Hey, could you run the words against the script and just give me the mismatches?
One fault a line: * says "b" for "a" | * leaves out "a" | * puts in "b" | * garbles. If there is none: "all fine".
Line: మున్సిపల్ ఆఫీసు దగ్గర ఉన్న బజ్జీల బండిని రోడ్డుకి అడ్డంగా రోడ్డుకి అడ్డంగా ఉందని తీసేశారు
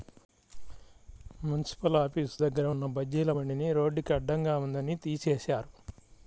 * leaves out "రోడ్డుకి అడ్డంగా"